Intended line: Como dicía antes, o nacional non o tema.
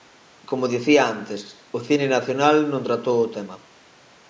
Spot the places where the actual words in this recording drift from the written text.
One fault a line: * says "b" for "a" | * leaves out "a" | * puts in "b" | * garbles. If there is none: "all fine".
* puts in "cine"
* puts in "tratou"